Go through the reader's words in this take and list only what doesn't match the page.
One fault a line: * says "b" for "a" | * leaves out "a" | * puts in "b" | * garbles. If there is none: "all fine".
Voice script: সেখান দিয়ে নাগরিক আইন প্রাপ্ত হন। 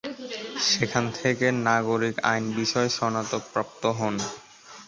* says "থেকে" for "দিয়ে"
* puts in "বিষয়ে স্নাতক"